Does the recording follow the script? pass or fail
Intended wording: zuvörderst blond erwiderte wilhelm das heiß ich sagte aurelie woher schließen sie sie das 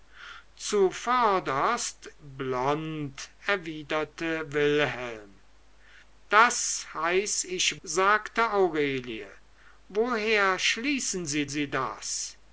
pass